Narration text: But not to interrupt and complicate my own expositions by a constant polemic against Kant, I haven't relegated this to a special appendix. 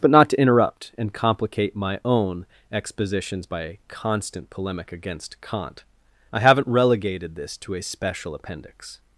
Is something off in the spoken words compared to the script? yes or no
no